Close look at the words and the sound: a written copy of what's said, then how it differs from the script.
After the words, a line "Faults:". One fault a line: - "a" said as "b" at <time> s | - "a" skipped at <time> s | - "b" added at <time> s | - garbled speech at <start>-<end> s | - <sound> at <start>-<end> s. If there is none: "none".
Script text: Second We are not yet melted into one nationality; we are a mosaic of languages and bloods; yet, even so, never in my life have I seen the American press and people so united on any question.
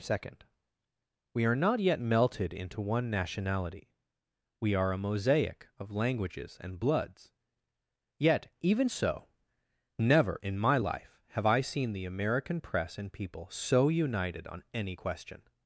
Second We are not yet melted into one nationality; we are a mosaic of languages and bloods; yet, even so, never in my life have I seen the American press and people so united on any question.
Faults:
none